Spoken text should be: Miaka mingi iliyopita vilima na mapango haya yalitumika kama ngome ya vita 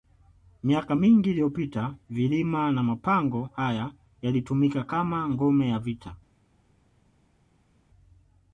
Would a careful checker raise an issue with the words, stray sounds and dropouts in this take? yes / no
no